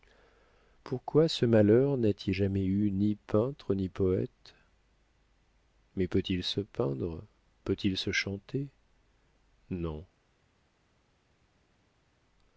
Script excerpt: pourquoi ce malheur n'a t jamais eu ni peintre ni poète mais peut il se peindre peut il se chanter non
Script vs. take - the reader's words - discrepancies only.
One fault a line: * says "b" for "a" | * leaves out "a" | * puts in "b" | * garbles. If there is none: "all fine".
all fine